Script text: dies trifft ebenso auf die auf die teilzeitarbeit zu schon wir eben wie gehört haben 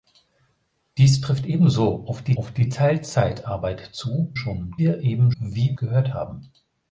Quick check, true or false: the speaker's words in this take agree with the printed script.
true